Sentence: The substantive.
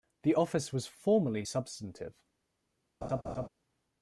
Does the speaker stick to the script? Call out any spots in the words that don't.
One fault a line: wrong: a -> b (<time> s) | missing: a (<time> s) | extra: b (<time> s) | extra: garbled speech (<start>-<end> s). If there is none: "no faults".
extra: office was formerly (0.3 s)